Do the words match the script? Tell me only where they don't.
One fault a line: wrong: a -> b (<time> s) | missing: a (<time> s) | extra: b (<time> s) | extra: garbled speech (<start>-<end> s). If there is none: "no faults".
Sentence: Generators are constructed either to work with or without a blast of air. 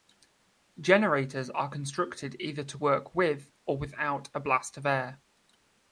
no faults